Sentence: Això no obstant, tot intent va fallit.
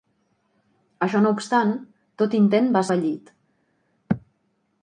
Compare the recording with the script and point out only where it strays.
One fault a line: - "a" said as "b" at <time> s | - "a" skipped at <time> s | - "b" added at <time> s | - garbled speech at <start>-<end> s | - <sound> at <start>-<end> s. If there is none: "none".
none